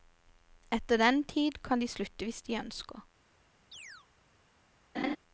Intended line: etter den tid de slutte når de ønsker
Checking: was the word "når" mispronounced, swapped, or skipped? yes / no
yes